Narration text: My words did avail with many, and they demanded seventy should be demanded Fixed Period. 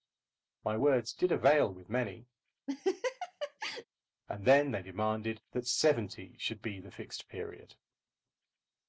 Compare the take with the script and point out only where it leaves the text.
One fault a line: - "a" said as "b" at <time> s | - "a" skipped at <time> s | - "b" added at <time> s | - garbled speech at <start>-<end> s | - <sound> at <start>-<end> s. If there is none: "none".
- laugh at 2.7-3.8 s
- "then" added at 4.4 s
- "that" added at 5.5 s
- "demanded" said as "the" at 6.8 s